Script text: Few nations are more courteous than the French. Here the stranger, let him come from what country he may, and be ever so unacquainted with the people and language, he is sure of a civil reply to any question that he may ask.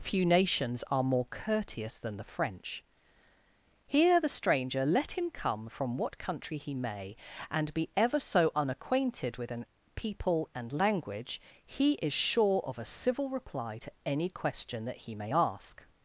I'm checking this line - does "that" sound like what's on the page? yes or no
yes